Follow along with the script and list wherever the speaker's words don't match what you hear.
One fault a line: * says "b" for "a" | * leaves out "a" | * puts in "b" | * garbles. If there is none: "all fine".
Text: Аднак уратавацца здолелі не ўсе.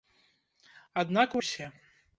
* leaves out "уратавацца здолелі не"